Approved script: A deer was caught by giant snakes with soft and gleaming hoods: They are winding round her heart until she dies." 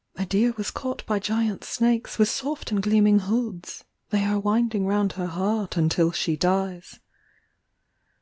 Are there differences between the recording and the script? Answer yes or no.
no